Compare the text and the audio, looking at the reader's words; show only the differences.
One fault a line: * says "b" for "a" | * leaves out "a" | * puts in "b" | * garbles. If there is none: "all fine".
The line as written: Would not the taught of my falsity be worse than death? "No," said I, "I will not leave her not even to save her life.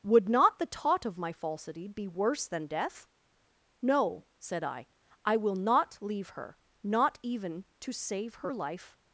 all fine